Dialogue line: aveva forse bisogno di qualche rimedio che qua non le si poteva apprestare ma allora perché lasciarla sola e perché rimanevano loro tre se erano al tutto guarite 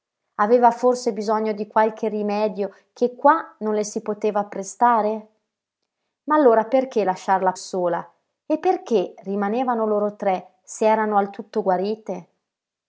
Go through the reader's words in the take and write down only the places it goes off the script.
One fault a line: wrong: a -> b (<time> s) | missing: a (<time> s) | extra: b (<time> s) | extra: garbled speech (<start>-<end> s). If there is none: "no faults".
no faults